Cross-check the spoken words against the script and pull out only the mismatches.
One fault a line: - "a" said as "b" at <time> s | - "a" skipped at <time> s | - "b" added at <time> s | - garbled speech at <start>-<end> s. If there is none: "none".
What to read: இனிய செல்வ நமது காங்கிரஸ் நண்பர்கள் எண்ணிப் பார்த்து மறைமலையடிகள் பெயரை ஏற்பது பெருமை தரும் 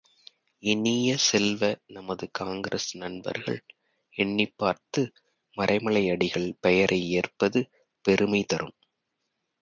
none